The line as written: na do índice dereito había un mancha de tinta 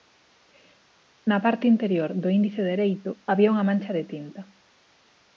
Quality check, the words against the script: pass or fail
fail